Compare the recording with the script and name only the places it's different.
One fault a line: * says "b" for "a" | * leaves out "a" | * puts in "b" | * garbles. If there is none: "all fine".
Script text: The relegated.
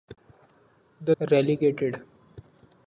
all fine